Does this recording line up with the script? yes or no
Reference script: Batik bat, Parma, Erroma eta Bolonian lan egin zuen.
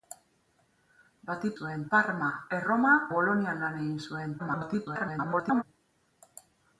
no